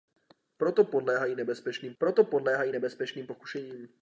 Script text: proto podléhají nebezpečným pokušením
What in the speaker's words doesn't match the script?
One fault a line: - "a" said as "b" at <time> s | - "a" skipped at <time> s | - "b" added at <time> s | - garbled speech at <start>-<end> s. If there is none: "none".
- "proto podléhají nebezpečným" added at 2.0 s